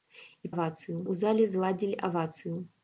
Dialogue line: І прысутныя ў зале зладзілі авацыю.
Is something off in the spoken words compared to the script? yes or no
yes